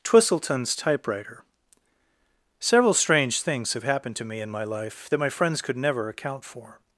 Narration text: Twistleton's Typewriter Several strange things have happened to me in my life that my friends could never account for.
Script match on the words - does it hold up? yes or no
yes